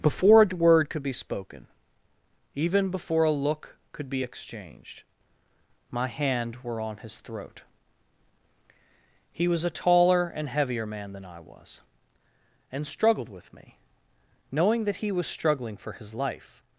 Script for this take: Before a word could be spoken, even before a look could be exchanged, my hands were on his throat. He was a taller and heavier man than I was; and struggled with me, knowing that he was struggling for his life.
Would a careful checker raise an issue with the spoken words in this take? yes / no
yes